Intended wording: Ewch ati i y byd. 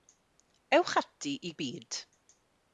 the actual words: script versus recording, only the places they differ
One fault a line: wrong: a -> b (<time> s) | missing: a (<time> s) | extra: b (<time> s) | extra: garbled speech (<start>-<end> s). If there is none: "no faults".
no faults